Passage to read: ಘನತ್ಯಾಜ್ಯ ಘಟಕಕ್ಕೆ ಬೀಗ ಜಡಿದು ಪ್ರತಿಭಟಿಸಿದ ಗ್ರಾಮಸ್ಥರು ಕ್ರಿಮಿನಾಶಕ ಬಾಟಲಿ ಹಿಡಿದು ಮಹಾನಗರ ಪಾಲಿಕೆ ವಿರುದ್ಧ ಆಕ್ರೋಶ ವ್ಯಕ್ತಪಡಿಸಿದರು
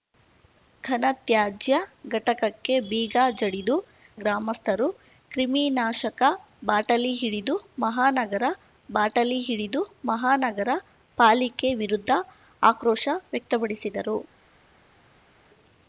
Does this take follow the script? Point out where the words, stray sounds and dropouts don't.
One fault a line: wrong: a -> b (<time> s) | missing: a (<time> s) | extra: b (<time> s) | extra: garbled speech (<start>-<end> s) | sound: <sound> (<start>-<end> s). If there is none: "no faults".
missing: ಪ್ರತಿಭಟಿಸಿದ (3.8 s)
extra: ಬಾಟಲಿ ಹಿಡಿದು ಮಹಾನಗರ (8.9 s)